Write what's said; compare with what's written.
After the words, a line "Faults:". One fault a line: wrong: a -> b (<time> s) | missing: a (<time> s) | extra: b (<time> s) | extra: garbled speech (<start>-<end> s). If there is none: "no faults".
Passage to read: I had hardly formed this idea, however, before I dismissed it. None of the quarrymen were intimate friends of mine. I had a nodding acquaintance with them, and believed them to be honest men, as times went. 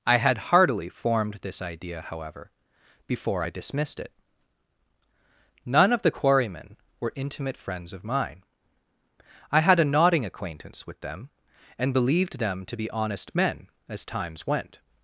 I had heartily formed this idea, however, before I dismissed it. None of the quarrymen were intimate friends of mine. I had a nodding acquaintance with them, and believed them to be honest men, as times went.
Faults:
wrong: hardly -> heartily (0.5 s)